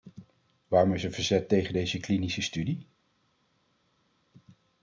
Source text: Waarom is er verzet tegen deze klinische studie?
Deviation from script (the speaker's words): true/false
false